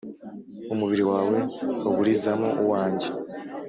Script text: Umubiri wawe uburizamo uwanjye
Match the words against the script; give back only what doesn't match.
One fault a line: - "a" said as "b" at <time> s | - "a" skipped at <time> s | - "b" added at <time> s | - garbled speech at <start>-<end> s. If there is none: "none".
none